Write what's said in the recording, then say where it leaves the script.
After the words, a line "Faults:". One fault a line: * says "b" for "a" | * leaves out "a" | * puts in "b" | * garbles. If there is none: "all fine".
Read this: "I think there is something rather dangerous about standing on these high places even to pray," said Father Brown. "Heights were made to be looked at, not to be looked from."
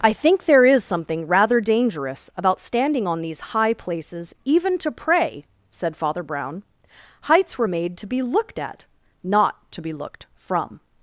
"I think there is something rather dangerous about standing on these high places even to pray," said Father Brown. "Heights were made to be looked at, not to be looked from."
Faults:
all fine